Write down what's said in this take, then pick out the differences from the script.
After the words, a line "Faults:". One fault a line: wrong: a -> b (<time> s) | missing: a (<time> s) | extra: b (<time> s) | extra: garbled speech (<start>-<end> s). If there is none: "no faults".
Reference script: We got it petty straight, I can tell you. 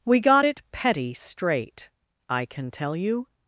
We got it petty straight, I can tell you.
Faults:
no faults